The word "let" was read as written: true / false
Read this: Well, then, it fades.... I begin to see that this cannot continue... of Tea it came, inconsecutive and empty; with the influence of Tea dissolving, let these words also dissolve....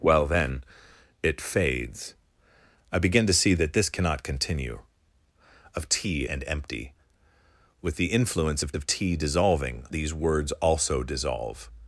false